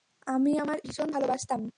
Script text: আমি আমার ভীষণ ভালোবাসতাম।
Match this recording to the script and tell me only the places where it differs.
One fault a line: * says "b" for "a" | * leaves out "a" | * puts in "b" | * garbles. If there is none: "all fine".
all fine